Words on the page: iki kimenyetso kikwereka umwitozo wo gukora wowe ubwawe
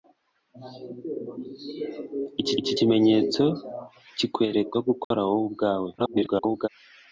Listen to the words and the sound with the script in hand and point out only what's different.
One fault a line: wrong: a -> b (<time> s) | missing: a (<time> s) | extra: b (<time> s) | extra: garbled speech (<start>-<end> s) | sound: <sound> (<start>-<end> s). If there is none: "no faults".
extra: iki (2.6 s)
missing: umwitozo (4.7 s)
sound: dropout (5.0-5.1 s)
extra: garbled speech (6.0-6.7 s)